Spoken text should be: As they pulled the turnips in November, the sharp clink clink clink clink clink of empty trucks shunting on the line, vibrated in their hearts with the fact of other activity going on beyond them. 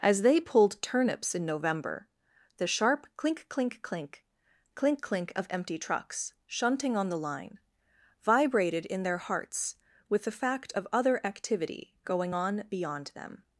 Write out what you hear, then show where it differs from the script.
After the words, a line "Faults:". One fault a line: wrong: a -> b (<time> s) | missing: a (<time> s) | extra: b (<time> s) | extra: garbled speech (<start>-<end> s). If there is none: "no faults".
As they pulled turnips in November, the sharp clink clink clink clink clink of empty trucks shunting on the line, vibrated in their hearts with the fact of other activity going on beyond them.
Faults:
missing: the (0.8 s)